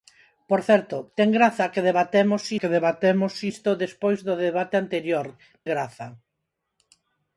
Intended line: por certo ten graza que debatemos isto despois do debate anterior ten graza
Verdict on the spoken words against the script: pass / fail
fail